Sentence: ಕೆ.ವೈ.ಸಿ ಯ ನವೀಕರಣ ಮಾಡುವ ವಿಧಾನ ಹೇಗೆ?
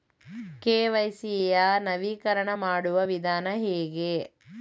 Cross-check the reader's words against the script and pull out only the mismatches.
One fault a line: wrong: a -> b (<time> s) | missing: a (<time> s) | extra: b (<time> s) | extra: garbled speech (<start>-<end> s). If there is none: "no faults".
no faults